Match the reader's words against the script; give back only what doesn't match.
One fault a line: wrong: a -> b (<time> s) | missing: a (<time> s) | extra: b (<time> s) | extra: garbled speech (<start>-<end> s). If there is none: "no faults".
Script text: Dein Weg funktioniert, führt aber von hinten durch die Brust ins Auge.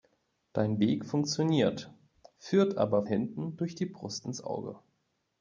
missing: von (3.0 s)